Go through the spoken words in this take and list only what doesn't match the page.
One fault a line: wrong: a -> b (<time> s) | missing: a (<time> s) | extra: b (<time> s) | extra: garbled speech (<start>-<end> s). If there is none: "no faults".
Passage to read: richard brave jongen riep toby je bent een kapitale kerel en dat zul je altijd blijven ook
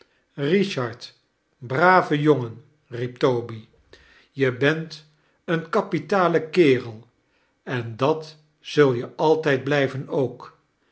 no faults